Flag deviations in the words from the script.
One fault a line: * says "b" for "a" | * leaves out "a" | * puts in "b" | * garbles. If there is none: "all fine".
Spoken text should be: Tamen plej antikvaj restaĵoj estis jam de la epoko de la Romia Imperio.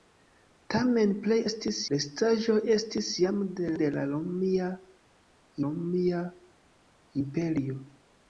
* says "estis" for "antikvaj"
* leaves out "la epoko"
* puts in "Romia"